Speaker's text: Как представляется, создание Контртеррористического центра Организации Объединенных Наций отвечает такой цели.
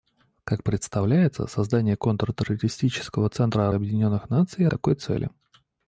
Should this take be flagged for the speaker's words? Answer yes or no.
yes